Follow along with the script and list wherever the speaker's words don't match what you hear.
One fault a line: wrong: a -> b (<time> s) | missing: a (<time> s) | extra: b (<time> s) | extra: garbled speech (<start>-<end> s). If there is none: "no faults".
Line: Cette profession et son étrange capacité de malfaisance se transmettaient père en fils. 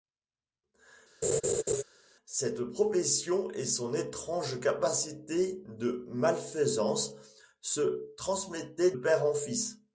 no faults